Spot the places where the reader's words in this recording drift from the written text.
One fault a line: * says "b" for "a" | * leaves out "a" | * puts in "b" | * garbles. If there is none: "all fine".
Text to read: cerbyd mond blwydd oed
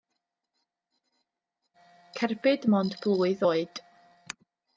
all fine